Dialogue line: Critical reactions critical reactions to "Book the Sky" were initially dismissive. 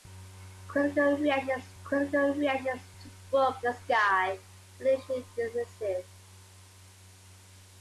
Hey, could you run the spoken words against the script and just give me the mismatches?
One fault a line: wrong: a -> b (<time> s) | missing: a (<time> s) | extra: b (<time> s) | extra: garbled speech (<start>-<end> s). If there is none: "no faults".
no faults